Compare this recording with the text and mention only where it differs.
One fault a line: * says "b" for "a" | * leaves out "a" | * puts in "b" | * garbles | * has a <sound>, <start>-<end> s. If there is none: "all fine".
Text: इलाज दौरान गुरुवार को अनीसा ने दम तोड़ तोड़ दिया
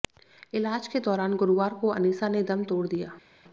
* puts in "के"
* leaves out "तोड़"